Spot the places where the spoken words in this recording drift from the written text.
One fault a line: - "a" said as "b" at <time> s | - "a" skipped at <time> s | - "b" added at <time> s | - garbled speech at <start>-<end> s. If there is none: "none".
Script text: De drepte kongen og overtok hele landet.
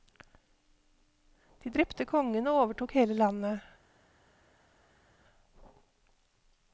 none